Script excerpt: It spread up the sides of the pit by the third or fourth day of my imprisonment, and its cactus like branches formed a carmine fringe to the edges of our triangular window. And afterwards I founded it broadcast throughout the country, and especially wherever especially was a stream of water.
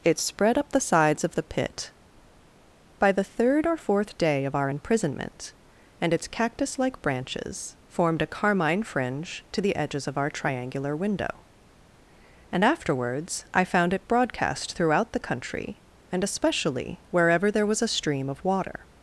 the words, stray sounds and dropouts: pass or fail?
fail